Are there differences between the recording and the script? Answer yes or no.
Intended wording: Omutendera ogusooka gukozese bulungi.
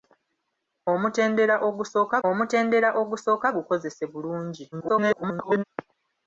yes